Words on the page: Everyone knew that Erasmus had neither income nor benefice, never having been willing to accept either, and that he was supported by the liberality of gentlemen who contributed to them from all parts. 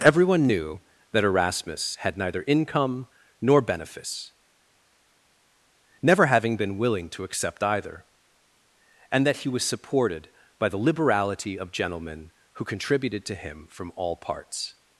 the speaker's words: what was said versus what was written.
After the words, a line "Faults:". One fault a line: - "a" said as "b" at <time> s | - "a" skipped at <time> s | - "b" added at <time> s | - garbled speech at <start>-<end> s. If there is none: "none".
Everyone knew that Erasmus had neither income nor benefice, never having been willing to accept either, and that he was supported by the liberality of gentlemen who contributed to him from all parts.
Faults:
- "them" said as "him" at 13.3 s